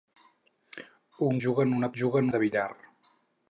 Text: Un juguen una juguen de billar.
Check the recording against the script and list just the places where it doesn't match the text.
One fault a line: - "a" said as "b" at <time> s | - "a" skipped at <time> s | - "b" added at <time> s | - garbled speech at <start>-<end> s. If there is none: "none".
none